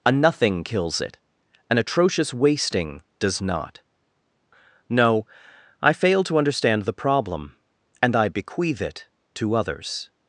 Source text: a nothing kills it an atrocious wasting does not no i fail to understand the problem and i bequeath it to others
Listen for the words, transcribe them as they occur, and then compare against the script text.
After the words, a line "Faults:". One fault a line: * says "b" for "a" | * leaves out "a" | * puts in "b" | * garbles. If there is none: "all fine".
a nothing kills it an atrocious wasting does not no i fail to understand the problem and i bequeath it to others
Faults:
all fine